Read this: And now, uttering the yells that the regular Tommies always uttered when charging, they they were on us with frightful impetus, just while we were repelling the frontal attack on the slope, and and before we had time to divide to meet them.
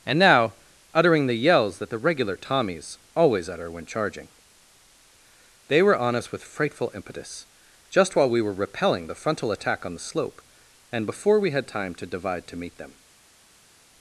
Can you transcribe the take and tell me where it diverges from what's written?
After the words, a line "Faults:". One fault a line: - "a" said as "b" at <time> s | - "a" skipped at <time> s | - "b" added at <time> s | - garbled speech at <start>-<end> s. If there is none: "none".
And now, uttering the yells that the regular Tommies always utter when charging, they were on us with frightful impetus, just while we were repelling the frontal attack on the slope, and before we had time to divide to meet them.
Faults:
- "uttered" said as "utter" at 3.5 s
- "they" skipped at 5.8 s
- "and" skipped at 11.0 s